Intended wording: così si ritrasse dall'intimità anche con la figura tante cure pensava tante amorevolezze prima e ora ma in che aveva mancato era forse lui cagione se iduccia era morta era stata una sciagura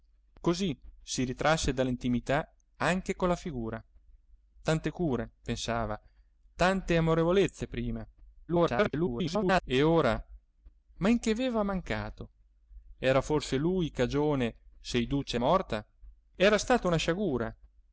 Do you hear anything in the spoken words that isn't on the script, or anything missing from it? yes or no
yes